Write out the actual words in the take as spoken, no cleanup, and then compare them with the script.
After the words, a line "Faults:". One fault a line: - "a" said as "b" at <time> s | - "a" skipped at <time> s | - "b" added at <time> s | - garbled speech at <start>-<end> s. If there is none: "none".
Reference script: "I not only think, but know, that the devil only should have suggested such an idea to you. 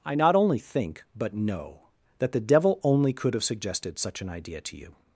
"I not only think, but know, that the devil only could have suggested such an idea to you.
Faults:
- "should" said as "could" at 3.1 s